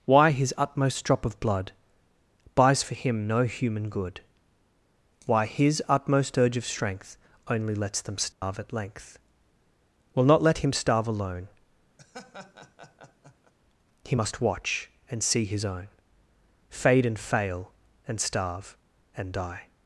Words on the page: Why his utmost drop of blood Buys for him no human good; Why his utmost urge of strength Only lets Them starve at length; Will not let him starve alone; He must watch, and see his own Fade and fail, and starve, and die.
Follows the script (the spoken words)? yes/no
yes